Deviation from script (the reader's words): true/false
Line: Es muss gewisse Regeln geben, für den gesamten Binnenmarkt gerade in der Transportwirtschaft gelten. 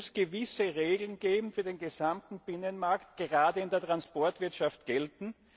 false